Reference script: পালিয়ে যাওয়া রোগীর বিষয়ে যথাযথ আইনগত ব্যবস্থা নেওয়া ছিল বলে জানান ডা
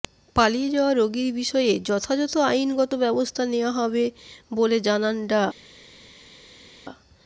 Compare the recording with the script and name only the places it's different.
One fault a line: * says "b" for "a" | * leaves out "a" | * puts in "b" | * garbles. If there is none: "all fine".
* says "হবে" for "ছিল"